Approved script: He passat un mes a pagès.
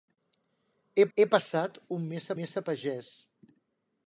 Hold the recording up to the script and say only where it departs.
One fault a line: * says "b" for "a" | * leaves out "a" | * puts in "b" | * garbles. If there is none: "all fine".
* puts in "he"
* puts in "mes"